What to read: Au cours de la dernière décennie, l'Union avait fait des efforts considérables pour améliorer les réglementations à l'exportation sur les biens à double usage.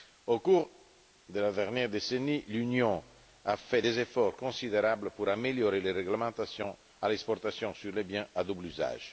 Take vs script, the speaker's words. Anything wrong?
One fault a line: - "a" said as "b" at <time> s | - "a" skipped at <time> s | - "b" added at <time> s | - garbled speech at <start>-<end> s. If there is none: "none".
- "avait" said as "a" at 3.4 s